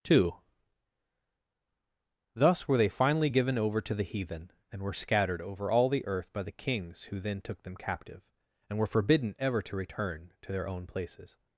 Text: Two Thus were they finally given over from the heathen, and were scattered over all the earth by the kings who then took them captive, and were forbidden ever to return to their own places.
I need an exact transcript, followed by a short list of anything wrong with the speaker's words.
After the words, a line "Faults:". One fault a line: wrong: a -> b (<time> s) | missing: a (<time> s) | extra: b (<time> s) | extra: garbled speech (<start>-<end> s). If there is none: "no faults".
Two Thus were they finally given over to the heathen, and were scattered over all the earth by the kings who then took them captive, and were forbidden ever to return to their own places.
Faults:
wrong: from -> to (3.8 s)